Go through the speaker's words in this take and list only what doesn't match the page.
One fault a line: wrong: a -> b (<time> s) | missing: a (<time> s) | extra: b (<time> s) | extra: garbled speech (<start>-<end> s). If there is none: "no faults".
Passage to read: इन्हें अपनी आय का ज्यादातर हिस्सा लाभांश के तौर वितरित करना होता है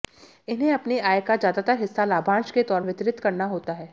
no faults